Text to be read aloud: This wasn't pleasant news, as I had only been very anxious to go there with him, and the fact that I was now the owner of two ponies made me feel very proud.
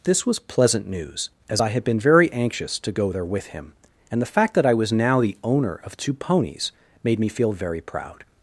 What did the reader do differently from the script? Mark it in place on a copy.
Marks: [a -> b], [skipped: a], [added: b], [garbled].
This [wasn't -> was] pleasant news, as I had [skipped: only] been very anxious to go there with him, and the fact that I was now the owner of two ponies made me feel very proud.